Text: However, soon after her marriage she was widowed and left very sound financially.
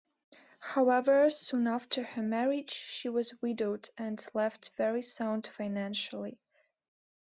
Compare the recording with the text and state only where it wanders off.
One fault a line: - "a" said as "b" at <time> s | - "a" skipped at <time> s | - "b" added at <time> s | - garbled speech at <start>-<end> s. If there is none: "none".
none